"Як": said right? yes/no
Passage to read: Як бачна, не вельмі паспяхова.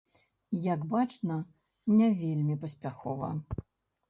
yes